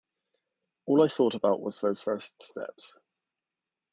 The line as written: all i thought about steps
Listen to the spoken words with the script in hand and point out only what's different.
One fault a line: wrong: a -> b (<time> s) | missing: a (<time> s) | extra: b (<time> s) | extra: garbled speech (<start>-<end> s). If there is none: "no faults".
extra: was those first (1.6 s)